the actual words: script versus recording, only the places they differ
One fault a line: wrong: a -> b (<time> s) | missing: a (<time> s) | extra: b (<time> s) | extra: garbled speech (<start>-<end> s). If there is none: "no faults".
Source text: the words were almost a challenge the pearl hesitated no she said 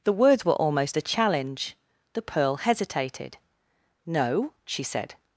no faults